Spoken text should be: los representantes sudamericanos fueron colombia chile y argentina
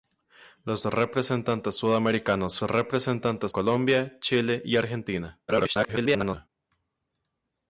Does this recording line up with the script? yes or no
no